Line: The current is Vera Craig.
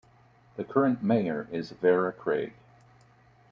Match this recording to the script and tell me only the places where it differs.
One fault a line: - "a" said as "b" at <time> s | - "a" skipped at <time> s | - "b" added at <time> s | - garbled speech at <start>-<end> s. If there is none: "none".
- "mayor" added at 1.0 s